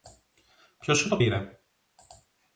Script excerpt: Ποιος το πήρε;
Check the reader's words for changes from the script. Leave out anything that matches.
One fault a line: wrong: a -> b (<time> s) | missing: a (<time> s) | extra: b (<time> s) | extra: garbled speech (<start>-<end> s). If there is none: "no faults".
extra: σου (1.0 s)